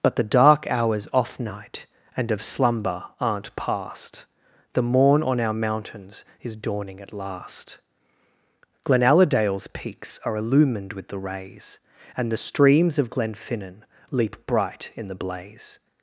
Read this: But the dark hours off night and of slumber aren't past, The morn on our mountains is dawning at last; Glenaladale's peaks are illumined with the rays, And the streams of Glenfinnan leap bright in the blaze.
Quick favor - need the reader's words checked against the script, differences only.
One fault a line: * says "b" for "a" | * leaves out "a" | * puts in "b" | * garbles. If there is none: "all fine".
all fine